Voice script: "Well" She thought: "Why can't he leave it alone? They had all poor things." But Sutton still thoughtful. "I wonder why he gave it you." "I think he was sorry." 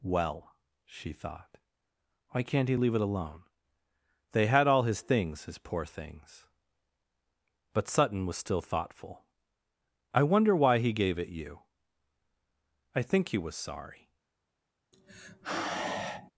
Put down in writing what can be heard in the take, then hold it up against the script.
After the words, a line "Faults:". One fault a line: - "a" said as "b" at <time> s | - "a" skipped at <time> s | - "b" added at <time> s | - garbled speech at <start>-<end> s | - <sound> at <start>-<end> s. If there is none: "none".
"Well" She thought: "Why can't he leave it alone? They had all his things, his poor things." But Sutton was still thoughtful. "I wonder why he gave it you." "I think he was sorry."
Faults:
- "his things his" added at 4.8 s
- "was" added at 8.3 s
- sigh at 14.9-16.3 s